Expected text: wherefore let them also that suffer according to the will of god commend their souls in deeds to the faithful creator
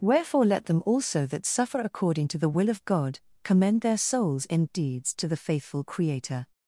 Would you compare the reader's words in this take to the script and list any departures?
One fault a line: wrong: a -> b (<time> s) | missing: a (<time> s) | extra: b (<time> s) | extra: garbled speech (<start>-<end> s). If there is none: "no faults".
no faults